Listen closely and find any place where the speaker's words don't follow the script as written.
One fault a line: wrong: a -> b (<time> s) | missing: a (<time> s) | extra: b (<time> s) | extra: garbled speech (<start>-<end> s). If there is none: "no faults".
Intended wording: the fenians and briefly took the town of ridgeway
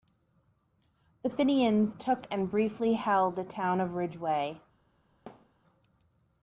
extra: took (1.9 s)
wrong: took -> held (2.9 s)